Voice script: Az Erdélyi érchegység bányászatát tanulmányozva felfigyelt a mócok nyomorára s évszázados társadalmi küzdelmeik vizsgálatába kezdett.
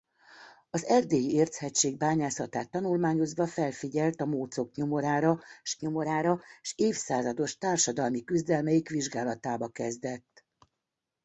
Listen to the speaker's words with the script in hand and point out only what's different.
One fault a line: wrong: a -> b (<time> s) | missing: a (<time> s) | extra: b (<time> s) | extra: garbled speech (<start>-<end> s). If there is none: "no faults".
extra: nyomorára s (5.8 s)